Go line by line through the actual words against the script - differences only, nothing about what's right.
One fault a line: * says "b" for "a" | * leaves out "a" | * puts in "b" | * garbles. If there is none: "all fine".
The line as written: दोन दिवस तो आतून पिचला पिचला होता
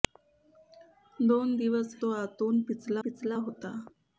all fine